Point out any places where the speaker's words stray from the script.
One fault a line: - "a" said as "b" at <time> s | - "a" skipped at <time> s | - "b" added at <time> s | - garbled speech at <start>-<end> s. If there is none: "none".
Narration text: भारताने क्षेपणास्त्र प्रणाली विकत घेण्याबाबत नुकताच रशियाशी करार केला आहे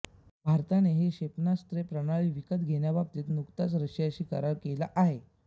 - "ही" added at 0.9 s